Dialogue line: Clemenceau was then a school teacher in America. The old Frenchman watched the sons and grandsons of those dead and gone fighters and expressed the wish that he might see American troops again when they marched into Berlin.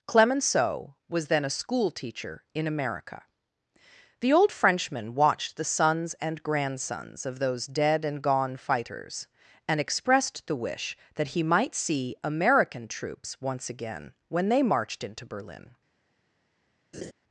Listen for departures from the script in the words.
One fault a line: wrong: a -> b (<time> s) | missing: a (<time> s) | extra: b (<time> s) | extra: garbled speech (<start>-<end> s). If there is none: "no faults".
extra: once (13.4 s)